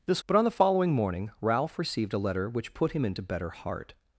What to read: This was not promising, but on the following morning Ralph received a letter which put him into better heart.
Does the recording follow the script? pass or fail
fail